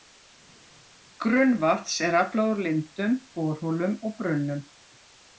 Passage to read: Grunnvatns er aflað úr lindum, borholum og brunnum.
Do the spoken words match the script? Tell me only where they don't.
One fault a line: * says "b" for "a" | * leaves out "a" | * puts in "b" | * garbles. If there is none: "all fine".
all fine